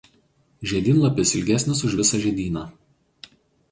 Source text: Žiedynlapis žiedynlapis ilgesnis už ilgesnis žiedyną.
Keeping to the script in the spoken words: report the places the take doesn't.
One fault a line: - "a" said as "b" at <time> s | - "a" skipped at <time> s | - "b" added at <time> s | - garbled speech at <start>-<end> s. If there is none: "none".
- "žiedynlapis" skipped at 1.3 s
- "ilgesnis" said as "visą" at 2.0 s